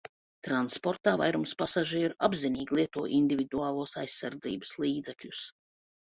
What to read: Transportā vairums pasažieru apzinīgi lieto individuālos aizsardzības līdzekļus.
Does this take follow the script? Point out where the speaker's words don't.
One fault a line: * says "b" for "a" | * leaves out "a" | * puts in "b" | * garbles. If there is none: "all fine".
all fine